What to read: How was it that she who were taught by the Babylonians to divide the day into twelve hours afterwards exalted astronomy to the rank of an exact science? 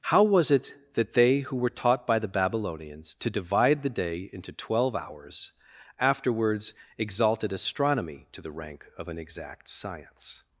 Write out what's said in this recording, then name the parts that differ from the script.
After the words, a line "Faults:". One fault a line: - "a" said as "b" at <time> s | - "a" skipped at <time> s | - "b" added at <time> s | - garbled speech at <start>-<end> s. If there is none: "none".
How was it that they who were taught by the Babylonians to divide the day into twelve hours afterwards exalted astronomy to the rank of an exact science?
Faults:
- "she" said as "they" at 1.1 s